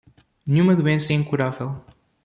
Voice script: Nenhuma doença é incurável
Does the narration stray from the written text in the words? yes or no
no